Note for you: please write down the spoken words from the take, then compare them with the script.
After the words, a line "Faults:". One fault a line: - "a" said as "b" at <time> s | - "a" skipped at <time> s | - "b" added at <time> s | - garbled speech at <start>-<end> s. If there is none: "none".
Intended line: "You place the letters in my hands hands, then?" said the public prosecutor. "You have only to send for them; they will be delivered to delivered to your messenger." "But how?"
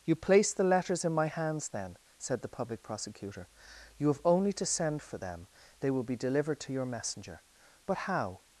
"You place the letters in my hands, then?" said the public prosecutor. "You have only to send for them; they will be delivered to your messenger." "But how?"
Faults:
- "hands" skipped at 1.7 s
- "delivered to" skipped at 6.7 s